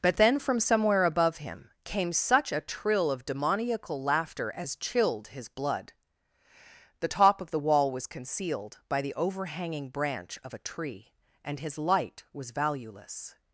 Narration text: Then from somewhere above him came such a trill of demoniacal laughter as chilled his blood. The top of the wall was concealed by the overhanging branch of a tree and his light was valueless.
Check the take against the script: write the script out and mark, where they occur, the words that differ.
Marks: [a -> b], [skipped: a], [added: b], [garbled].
[added: but] Then from somewhere above him came such a trill of demoniacal laughter as chilled his blood. The top of the wall was concealed by the overhanging branch of a tree and his light was valueless.